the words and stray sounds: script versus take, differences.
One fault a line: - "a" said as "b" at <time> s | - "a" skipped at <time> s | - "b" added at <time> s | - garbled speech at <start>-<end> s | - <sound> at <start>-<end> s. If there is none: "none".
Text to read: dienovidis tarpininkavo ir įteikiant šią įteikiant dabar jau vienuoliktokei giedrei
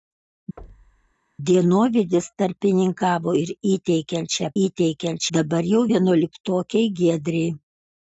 - thud at 0.6-1.1 s